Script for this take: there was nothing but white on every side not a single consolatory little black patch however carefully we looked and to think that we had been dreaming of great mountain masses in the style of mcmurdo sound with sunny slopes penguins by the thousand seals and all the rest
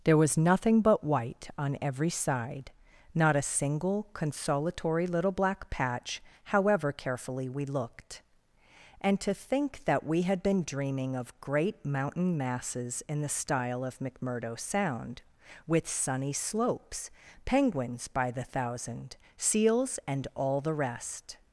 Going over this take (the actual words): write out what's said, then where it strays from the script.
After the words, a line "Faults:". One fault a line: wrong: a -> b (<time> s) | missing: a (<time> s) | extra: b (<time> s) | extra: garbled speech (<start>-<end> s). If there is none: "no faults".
there was nothing but white on every side not a single consolatory little black patch however carefully we looked and to think that we had been dreaming of great mountain masses in the style of mcmurdo sound with sunny slopes penguins by the thousand seals and all the rest
Faults:
no faults